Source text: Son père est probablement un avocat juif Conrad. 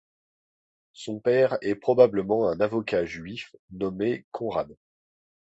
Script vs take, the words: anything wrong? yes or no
yes